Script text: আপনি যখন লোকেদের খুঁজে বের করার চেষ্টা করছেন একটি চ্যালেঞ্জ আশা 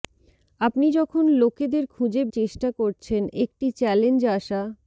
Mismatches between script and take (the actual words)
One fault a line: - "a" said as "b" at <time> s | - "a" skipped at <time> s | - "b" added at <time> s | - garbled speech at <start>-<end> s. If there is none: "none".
- "বের করার" skipped at 2.2 s